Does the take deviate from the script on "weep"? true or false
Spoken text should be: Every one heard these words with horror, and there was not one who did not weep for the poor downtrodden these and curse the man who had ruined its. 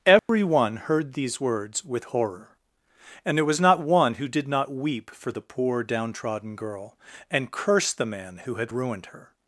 false